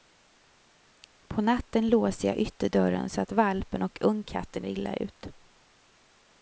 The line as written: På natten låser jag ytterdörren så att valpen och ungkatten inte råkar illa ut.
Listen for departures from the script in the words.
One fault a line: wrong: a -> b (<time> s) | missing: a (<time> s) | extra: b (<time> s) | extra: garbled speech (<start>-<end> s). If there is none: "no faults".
missing: inte råkar (4.7 s)